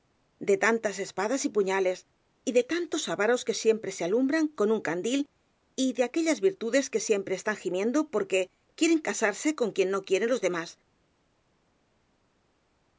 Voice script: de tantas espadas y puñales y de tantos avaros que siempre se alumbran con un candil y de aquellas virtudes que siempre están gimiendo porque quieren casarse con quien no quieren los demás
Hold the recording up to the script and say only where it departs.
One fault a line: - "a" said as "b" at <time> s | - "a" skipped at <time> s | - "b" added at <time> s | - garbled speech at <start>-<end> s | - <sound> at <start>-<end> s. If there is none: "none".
none